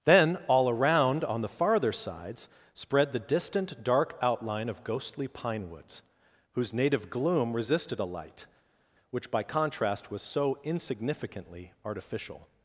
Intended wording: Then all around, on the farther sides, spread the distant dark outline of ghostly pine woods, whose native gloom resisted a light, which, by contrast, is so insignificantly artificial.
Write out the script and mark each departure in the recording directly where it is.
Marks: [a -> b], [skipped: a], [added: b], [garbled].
Then all around, on the farther sides, spread the distant dark outline of ghostly pine woods, whose native gloom resisted a light, which, by contrast, [is -> was] so insignificantly artificial.